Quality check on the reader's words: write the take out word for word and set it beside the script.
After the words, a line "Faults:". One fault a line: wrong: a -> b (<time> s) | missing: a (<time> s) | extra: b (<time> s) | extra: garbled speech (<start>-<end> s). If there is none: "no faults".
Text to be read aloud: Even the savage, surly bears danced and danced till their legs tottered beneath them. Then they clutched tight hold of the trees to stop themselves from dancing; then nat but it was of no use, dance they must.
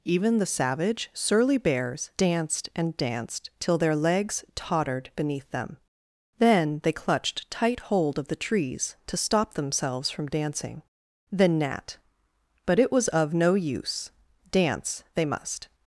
Even the savage, surly bears danced and danced till their legs tottered beneath them. Then they clutched tight hold of the trees to stop themselves from dancing; then nat but it was of no use, dance they must.
Faults:
no faults